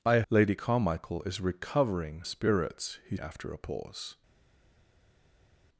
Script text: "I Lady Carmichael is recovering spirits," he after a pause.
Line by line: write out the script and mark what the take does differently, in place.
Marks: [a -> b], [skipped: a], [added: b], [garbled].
"I Lady Carmichael is recovering spirits," he after a pause.